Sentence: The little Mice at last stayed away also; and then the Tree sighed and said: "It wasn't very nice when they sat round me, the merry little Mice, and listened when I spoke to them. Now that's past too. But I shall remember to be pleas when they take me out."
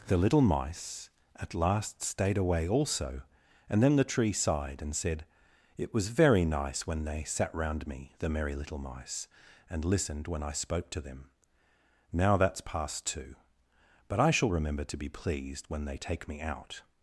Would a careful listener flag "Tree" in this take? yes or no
no